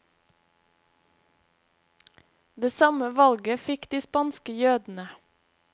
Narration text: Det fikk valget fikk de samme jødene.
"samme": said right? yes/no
no